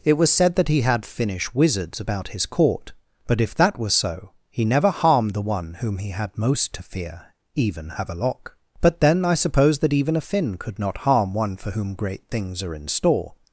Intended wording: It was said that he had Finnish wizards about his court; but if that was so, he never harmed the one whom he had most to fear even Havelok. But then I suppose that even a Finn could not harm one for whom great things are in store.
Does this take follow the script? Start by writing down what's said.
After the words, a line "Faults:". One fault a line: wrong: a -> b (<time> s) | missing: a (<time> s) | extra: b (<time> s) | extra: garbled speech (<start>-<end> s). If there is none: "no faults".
It was said that he had Finnish wizards about his court; but if that was so, he never harmed the one whom he had most to fear even Havelok. But then I suppose that even a Finn could not harm one for whom great things are in store.
Faults:
no faults